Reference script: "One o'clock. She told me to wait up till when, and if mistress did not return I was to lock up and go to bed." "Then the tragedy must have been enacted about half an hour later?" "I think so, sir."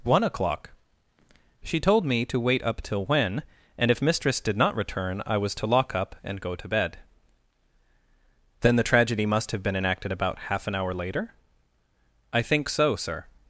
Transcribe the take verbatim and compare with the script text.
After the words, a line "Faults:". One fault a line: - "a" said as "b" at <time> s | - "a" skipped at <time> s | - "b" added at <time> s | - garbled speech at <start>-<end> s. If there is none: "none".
"One o'clock. She told me to wait up till when, and if mistress did not return I was to lock up and go to bed." "Then the tragedy must have been enacted about half an hour later?" "I think so, sir."
Faults:
none